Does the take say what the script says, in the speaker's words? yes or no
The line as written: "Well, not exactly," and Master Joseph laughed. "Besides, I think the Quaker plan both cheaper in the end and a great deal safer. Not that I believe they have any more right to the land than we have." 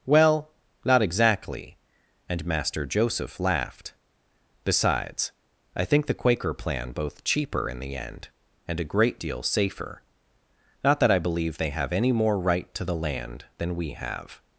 yes